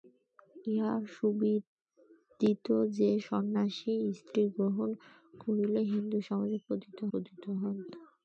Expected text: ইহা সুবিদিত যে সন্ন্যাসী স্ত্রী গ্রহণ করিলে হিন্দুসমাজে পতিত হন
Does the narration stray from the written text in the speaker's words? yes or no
yes